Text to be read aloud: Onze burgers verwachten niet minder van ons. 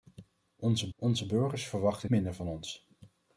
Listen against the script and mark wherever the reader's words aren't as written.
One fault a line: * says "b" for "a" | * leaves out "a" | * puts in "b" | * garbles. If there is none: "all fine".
* puts in "onze"
* leaves out "niet"